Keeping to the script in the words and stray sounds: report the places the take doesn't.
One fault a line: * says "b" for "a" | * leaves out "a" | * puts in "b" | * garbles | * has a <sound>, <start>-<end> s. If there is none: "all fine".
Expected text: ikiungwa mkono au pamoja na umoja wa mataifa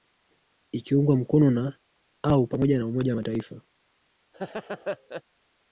* puts in "na"
* has a laugh, 4.3-5.2 s